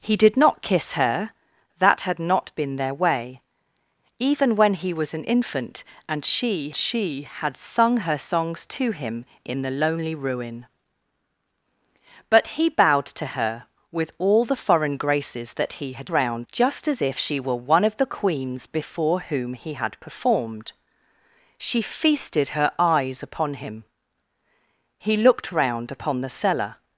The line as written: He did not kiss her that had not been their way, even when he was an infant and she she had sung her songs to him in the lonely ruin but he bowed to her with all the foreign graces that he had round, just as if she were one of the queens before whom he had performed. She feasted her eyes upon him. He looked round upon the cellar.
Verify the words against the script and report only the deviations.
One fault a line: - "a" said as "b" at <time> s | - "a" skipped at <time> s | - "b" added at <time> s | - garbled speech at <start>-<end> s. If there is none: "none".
none